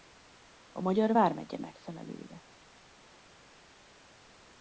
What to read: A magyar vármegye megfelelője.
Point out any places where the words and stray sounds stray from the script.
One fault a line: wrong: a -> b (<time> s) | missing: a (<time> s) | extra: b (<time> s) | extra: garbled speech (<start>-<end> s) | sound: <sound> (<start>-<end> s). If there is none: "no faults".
no faults